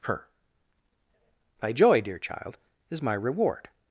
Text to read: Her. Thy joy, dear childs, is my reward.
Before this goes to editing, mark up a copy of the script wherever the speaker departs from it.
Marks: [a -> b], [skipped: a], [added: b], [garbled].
Her. Thy joy, dear [childs, -> child] is my reward.